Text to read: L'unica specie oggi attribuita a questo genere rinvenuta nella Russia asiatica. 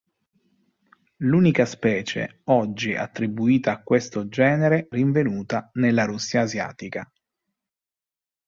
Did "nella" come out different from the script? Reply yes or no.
no